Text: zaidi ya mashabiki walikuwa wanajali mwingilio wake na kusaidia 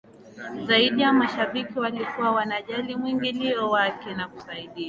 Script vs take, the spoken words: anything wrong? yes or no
no